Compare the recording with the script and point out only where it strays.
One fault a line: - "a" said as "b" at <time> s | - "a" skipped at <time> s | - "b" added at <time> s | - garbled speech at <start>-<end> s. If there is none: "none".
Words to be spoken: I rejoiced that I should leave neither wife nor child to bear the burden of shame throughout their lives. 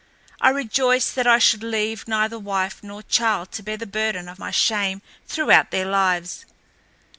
- "my" added at 4.4 s